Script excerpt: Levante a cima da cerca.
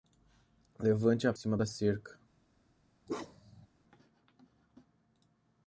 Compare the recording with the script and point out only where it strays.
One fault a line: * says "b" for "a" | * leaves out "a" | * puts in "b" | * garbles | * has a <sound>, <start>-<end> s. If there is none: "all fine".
* has a bark, 3.1-3.7 s